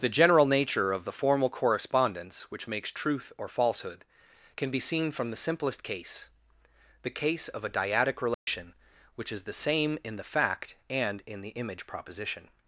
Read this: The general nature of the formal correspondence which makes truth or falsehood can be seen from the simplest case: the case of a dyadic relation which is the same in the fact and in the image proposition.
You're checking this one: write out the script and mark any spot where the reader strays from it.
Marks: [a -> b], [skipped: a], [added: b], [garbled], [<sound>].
The general nature of the formal correspondence which makes truth or falsehood can be seen from the simplest case: the case of a dyadic relation [dropout] which is the same in the fact and in the image proposition.